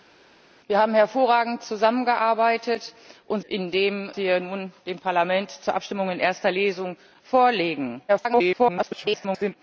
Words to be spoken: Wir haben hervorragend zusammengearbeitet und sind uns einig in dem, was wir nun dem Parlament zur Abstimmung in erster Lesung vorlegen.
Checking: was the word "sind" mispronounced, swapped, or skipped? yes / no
yes